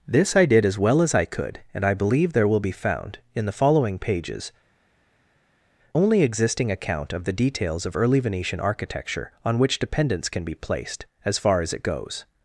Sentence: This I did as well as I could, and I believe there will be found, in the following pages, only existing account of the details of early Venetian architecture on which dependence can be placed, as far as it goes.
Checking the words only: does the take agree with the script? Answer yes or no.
yes